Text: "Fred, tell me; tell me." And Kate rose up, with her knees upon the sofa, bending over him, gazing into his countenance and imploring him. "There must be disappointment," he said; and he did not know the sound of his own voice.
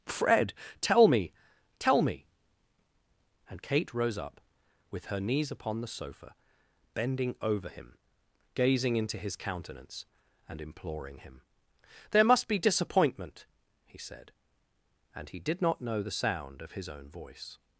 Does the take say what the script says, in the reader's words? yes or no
yes